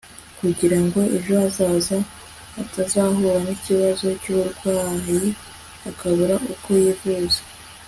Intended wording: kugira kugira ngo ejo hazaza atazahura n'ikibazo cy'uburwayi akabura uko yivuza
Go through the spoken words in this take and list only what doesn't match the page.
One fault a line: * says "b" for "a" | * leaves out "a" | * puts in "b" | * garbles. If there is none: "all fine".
* leaves out "kugira"